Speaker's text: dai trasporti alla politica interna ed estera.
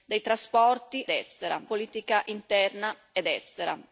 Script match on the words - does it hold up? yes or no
no